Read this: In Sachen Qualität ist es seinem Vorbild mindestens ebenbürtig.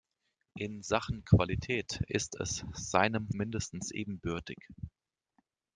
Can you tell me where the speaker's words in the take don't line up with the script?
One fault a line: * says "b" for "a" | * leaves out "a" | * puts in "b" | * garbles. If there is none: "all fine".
* leaves out "Vorbild"